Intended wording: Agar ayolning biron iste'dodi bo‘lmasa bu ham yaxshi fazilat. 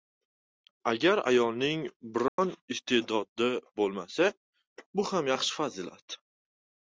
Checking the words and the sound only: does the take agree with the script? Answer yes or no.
no